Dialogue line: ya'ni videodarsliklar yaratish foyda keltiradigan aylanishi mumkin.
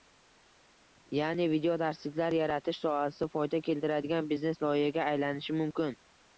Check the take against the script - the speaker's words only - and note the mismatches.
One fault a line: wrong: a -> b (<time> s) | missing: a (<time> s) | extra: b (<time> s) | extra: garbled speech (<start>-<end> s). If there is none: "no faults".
extra: sohasi (2.9 s)
extra: biznes loyihaga (4.3 s)